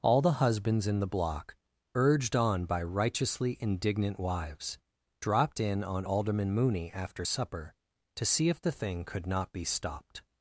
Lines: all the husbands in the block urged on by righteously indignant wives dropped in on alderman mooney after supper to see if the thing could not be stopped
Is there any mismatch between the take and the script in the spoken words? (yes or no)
no